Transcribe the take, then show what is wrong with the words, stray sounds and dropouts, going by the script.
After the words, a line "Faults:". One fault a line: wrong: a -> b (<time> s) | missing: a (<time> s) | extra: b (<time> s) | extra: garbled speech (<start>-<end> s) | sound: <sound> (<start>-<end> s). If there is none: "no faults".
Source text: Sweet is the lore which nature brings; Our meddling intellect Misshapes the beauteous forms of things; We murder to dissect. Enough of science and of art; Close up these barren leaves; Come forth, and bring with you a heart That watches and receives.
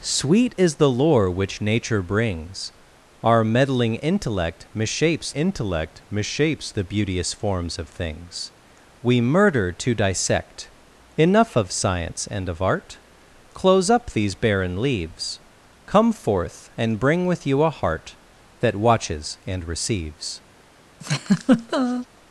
Sweet is the lore which nature brings; Our meddling intellect Misshapes intellect Misshapes the beauteous forms of things; We murder to dissect. Enough of science and of art; Close up these barren leaves; Come forth, and bring with you a heart That watches and receives.
Faults:
extra: intellect Misshapes (5.3 s)
sound: laugh (21.0-22.1 s)